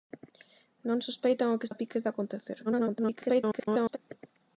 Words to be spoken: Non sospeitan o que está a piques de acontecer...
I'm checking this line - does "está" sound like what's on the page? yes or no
no